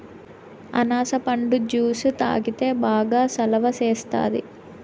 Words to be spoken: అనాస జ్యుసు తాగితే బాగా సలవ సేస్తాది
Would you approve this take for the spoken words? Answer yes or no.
no